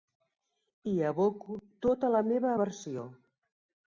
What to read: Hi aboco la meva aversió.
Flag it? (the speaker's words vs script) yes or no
yes